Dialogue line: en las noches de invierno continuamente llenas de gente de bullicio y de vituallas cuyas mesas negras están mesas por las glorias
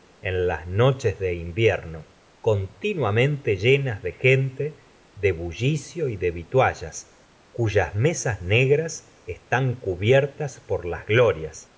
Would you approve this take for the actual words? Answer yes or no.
no